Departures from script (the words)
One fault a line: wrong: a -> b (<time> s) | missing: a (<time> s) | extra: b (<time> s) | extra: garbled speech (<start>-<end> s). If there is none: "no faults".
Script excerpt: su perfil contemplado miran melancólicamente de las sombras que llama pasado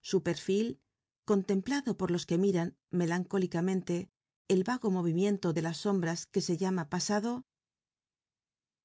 extra: por los que (2.0 s)
extra: el vago movimiento (4.5 s)
extra: se (6.4 s)